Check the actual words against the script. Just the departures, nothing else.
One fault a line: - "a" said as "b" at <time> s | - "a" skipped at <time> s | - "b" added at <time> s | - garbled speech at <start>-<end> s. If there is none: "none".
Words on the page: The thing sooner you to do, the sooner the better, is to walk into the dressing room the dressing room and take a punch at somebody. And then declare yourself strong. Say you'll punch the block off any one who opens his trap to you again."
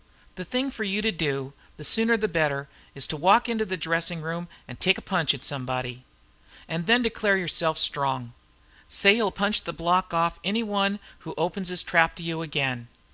- "sooner" said as "for" at 0.7 s
- "the dressing room" skipped at 4.5 s